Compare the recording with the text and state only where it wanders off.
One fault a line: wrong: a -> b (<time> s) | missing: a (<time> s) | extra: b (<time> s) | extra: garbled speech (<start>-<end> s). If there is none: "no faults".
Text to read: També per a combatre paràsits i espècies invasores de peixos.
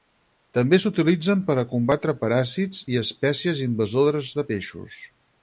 extra: s'utilitzen (0.8 s)